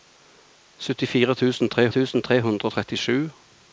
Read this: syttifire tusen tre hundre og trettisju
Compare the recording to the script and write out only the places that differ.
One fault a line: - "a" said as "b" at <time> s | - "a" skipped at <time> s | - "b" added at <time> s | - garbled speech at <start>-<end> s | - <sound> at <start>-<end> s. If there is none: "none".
- "tusen tre" added at 1.9 s